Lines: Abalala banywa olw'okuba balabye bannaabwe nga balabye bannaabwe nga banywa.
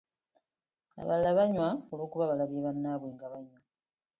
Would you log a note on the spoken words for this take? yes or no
yes